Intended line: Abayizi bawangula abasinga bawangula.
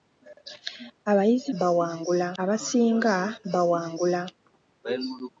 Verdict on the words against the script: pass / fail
pass